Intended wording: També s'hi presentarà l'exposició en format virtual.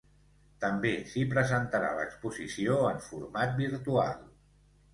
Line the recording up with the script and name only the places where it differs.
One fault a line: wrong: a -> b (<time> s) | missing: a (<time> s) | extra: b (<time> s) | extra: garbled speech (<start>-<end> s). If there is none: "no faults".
no faults